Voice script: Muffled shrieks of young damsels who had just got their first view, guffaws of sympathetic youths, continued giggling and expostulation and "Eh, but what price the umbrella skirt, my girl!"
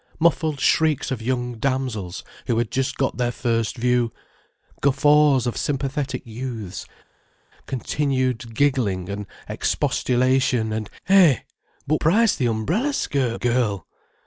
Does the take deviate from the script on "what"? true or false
true